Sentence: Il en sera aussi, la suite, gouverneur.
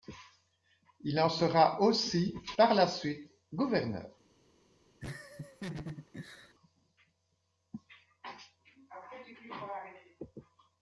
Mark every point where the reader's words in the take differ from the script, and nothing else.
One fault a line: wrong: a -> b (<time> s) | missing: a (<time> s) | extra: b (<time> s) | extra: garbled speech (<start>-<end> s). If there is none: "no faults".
extra: par (2.6 s)